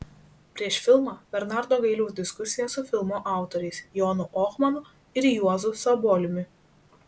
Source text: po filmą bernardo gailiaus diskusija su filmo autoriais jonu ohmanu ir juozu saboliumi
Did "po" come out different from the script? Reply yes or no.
yes